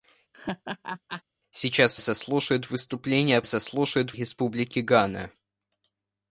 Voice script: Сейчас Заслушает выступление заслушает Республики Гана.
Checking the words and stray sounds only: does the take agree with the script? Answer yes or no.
no